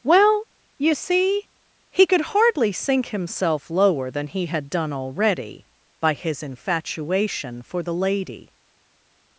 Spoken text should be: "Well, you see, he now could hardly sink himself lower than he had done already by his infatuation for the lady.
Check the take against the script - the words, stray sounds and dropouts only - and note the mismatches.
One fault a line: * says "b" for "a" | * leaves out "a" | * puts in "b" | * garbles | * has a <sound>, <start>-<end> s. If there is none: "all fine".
* leaves out "now"